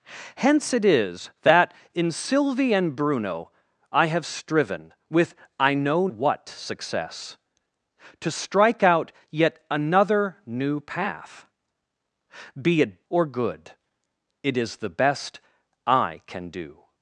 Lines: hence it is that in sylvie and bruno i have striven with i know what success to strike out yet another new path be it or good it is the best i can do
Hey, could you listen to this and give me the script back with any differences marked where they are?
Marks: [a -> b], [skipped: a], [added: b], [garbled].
hence it is that in sylvie and bruno i have striven with i know what success to strike out yet another new path be it or good it is the best i can do